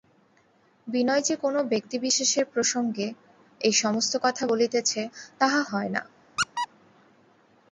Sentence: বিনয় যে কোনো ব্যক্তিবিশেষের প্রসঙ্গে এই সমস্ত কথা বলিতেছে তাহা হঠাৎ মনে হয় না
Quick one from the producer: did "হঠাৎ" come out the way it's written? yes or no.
no